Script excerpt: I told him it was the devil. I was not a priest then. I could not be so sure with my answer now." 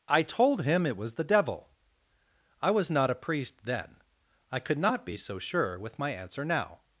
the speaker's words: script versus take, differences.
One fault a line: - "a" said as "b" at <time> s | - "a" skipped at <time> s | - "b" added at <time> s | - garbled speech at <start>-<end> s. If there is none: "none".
none